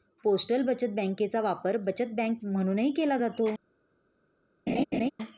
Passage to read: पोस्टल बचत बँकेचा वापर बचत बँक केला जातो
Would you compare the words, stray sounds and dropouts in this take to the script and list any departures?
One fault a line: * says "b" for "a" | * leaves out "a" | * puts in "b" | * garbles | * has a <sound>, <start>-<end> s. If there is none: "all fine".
* puts in "म्हणूनही"
* has a laugh, 4.7-5.1 s